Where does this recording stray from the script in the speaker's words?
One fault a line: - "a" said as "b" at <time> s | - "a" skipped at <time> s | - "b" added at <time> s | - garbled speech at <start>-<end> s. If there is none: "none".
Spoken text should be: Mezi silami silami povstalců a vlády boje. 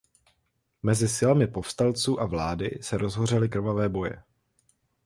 - "silami" skipped at 1.5 s
- "se rozhořely krvavé" added at 2.8 s